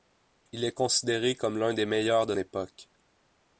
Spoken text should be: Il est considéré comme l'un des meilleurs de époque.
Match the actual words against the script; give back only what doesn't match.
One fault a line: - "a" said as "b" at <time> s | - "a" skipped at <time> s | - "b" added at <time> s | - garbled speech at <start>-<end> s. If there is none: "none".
none